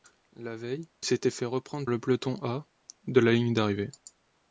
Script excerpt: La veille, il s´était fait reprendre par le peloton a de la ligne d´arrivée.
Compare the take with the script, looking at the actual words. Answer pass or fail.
fail